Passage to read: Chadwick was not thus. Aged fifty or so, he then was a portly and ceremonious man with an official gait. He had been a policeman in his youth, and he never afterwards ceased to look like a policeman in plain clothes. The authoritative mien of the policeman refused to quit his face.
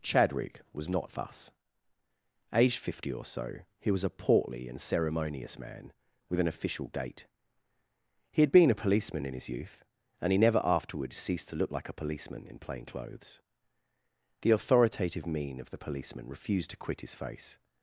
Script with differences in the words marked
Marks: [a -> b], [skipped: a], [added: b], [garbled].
Chadwick was not thus. Aged fifty or so, he [skipped: then] was a portly and ceremonious man with an official gait. He had been a policeman in his youth, and he never afterwards ceased to look like a policeman in plain clothes. The authoritative mien of the policeman refused to quit his face.